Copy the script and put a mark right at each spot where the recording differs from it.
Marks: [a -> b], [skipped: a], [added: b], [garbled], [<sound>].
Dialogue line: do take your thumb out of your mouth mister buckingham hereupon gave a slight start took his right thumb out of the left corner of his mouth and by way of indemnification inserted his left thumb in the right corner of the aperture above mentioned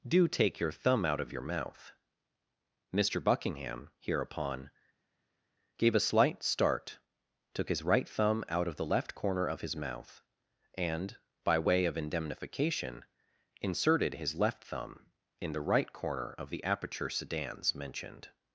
do take your thumb out of your mouth mister buckingham hereupon gave a slight start took his right thumb out of the left corner of his mouth and by way of indemnification inserted his left thumb in the right corner of the aperture [above -> sedans] mentioned